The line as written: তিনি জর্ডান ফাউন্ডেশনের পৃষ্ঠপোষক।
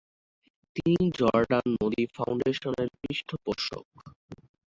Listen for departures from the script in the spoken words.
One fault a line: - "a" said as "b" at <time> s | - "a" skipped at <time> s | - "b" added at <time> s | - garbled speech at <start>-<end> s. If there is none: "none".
- "নদী" added at 1.8 s